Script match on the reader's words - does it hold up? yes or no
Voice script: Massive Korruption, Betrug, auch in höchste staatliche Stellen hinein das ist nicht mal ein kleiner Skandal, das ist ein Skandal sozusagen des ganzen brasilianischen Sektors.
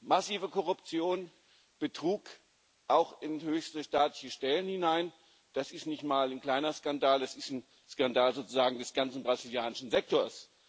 yes